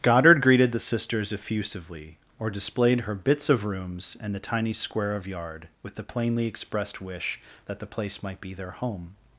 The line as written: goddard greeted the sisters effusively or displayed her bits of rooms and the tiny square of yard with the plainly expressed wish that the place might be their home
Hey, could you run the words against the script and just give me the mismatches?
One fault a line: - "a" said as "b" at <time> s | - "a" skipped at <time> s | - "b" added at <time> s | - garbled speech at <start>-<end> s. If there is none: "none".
none